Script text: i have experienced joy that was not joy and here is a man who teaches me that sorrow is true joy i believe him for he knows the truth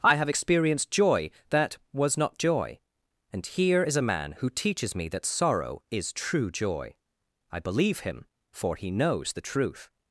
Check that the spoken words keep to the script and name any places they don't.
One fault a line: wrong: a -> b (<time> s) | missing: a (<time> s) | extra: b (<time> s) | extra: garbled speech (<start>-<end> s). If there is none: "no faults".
no faults